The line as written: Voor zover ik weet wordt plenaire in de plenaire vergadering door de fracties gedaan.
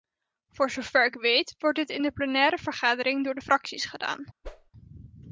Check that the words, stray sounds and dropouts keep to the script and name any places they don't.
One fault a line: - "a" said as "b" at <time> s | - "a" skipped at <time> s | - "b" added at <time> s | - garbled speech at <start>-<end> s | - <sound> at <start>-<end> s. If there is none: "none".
- "plenaire" said as "dit" at 1.8 s
- whoosh at 4.4-4.7 s